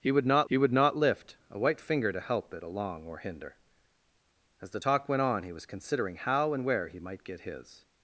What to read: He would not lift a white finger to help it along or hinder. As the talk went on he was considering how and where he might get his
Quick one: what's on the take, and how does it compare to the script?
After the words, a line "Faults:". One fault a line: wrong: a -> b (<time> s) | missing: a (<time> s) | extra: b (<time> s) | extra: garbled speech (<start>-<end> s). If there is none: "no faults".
He would not he would not lift a white finger to help it along or hinder. As the talk went on he was considering how and where he might get his
Faults:
extra: he would not (0.5 s)